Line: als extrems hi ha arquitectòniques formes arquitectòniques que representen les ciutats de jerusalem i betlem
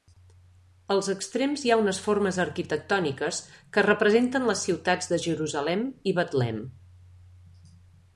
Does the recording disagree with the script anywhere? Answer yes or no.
yes